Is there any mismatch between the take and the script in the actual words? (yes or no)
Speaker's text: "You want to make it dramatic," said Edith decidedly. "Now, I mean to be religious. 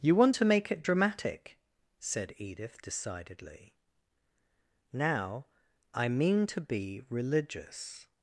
no